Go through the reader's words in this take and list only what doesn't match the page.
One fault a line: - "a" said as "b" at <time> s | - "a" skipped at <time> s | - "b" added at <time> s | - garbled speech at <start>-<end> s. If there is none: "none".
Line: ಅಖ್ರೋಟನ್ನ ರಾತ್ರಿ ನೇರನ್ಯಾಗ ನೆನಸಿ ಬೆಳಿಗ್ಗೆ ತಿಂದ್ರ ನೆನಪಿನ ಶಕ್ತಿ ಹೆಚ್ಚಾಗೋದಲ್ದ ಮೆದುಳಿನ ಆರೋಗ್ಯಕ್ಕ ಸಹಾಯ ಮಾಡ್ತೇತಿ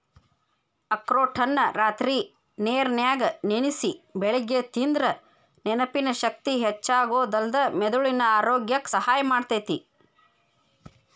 none